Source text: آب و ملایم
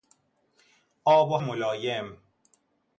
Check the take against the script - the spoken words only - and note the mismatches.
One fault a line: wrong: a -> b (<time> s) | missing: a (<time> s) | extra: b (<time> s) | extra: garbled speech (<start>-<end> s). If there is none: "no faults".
no faults